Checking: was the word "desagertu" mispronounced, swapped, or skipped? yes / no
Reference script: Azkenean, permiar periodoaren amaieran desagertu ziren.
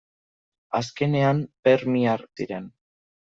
yes